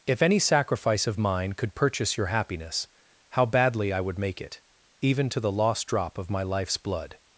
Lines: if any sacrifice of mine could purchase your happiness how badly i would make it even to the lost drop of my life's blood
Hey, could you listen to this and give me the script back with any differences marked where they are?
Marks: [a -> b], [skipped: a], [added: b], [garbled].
if any sacrifice of mine could purchase your happiness how badly i would make it even to the lost drop of my life's blood